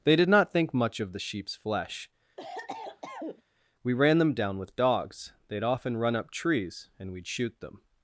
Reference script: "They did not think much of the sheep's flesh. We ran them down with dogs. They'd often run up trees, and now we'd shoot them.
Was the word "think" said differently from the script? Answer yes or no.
no